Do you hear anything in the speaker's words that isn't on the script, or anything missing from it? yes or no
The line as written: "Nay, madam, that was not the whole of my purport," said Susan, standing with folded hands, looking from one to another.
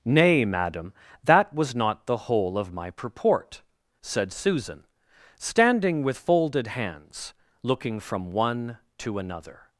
no